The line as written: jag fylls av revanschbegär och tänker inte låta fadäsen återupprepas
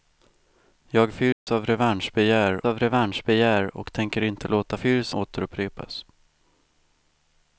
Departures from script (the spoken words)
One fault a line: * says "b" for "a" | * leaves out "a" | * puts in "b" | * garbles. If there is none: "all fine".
* puts in "av revanschbegär"
* says "fylls" for "fadäsen"